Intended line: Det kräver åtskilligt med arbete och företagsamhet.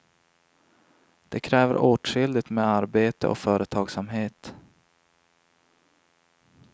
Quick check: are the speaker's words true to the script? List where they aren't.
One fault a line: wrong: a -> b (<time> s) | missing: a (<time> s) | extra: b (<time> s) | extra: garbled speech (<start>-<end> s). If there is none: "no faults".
no faults